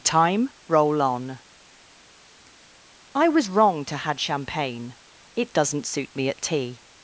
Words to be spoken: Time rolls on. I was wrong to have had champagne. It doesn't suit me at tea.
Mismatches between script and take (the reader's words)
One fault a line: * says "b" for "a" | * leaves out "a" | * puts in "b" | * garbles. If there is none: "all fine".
* says "roll" for "rolls"
* leaves out "have"